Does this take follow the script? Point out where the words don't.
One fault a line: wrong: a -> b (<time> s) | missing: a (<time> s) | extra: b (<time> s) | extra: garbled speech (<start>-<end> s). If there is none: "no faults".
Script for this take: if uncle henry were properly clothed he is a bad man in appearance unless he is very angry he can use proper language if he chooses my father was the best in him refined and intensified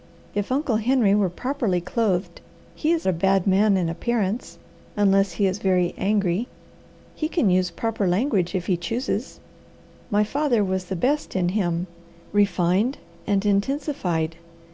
no faults